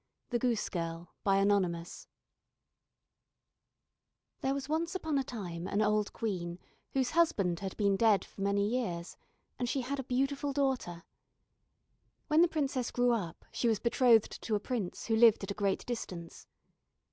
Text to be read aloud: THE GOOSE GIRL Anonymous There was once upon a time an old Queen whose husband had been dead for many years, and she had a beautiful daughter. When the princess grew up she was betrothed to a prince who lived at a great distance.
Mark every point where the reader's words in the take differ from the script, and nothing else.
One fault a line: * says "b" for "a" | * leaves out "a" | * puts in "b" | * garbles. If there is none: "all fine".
all fine